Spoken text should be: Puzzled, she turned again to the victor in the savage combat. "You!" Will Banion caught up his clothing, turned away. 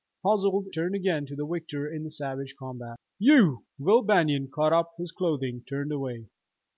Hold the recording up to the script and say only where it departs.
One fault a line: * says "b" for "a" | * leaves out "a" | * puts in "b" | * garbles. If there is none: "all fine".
* leaves out "she"